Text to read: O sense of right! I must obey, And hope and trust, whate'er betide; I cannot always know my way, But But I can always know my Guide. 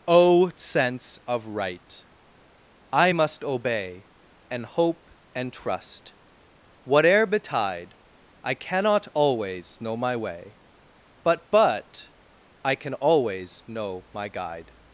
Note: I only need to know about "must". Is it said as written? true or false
true